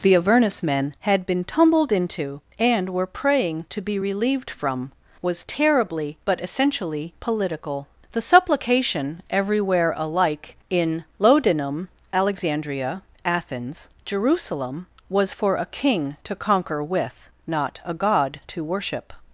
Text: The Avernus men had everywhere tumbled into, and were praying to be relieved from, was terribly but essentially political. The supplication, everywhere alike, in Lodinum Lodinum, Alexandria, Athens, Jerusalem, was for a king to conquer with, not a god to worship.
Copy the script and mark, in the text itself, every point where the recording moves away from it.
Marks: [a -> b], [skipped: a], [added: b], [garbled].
The Avernus men had [everywhere -> been] tumbled into, and were praying to be relieved from, was terribly but essentially political. The supplication, everywhere alike, in Lodinum [skipped: Lodinum,] Alexandria, Athens, Jerusalem, was for a king to conquer with, not a god to worship.